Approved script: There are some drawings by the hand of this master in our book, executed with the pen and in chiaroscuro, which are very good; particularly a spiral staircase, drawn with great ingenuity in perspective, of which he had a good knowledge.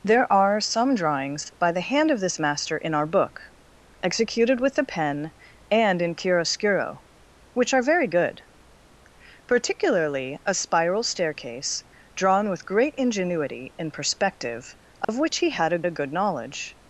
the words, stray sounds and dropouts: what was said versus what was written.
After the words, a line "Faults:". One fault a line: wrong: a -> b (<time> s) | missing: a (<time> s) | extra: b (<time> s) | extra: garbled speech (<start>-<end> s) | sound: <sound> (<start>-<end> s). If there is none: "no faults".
There are some drawings by the hand of this master in our book, executed with the pen and in chiaroscuro, which are very good; particularly a spiral staircase, drawn with great ingenuity in perspective, of which he had a a good knowledge.
Faults:
sound: dropout (15.0-15.1 s)
extra: a (15.9 s)